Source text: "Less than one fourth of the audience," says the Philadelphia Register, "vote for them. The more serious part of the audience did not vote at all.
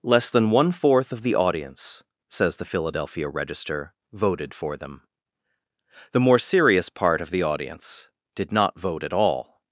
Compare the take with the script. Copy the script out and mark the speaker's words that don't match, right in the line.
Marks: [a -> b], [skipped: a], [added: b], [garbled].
"Less than one fourth of the audience," says the Philadelphia Register, ["vote -> voted] for them. The more serious part of the audience did not vote at all.